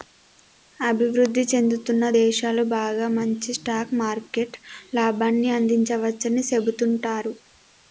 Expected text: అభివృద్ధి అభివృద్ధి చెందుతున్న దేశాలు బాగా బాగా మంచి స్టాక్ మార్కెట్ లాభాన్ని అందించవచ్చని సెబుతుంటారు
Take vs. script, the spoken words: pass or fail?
fail